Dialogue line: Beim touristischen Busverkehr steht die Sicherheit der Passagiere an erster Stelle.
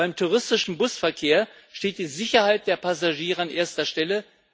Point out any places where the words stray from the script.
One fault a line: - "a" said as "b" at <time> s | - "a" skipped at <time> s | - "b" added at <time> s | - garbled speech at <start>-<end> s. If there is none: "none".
none